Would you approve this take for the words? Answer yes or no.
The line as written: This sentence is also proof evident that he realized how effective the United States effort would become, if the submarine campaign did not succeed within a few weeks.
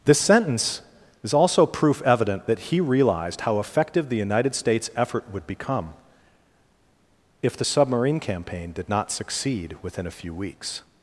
yes